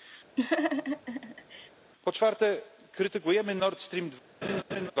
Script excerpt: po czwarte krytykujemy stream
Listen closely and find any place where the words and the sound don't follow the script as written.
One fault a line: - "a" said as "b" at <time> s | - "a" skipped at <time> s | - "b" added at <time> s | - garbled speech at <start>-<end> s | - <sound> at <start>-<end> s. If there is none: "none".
- laugh at 0.4-1.7 s
- "nord" added at 3.6 s
- laugh at 4.4-4.9 s